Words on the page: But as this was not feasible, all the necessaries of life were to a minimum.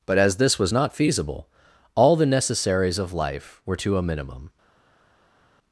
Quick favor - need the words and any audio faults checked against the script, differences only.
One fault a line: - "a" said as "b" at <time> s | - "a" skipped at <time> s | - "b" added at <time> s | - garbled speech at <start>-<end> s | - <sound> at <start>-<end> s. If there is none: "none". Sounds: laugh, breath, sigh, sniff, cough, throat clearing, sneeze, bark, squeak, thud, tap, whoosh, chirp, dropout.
none